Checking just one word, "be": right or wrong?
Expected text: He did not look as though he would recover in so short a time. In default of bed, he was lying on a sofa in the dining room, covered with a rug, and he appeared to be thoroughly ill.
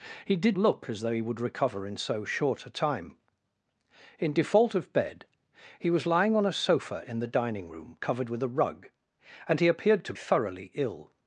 wrong